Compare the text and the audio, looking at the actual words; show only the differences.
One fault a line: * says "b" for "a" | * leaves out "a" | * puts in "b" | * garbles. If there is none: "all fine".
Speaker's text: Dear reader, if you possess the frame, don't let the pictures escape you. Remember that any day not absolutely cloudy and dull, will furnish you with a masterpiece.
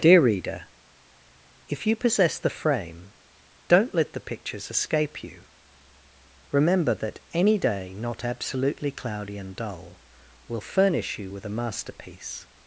all fine